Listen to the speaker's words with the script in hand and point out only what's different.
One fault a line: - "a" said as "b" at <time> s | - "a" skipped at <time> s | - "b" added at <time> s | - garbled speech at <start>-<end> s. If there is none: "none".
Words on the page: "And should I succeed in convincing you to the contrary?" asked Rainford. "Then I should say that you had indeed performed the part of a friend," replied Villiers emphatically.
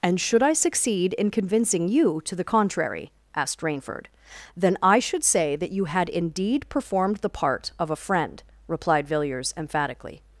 none